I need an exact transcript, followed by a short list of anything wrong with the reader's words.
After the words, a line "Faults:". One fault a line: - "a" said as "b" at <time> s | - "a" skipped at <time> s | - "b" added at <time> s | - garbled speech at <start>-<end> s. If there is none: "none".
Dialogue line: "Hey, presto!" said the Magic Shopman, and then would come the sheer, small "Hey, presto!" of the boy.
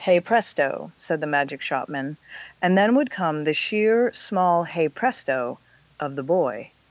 "Hey, presto!" said the Magic Shopman, and then would come the sheer, small "Hey, presto!" of the boy.
Faults:
none